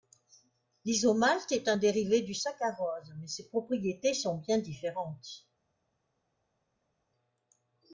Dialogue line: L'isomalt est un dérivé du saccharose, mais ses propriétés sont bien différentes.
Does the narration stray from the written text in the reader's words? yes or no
no